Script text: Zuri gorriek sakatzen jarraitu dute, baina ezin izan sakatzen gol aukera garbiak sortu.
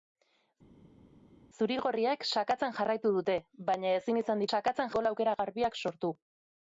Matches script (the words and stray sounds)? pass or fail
pass